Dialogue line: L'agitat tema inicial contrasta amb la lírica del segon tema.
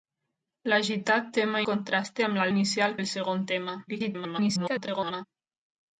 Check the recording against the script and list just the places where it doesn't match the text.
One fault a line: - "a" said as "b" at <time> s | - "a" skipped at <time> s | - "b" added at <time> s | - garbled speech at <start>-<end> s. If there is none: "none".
- "inicial" skipped at 1.6 s
- "lírica" said as "inicial" at 2.5 s
- garbled speech at 3.9-5.3 s